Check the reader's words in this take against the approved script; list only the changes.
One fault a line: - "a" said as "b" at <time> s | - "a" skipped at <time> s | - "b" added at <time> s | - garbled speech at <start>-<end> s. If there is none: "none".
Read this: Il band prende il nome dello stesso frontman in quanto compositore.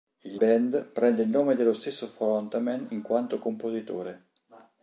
none